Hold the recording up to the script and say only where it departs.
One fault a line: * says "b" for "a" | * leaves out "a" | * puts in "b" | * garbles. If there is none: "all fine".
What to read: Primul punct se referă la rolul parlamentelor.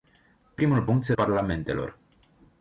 * leaves out "referă la rolul"